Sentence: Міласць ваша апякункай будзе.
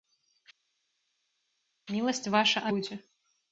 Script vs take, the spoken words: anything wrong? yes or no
yes